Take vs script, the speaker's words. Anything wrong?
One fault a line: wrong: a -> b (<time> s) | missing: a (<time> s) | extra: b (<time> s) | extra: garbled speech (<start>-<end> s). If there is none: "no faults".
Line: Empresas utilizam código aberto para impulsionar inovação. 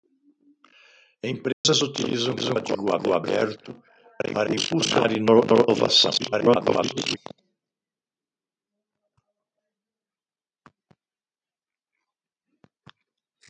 extra: garbled speech (6.2-7.2 s)